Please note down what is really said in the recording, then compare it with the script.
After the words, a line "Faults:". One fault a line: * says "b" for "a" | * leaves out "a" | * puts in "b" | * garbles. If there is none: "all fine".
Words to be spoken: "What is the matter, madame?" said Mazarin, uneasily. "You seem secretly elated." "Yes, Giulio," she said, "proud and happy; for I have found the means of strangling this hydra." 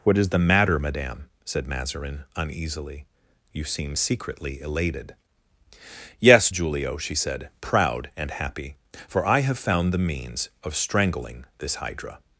"What is the matter, madame?" said Mazarin, uneasily. "You seem secretly elated." "Yes, Giulio," she said, "proud and happy; for I have found the means of strangling this hydra."
Faults:
all fine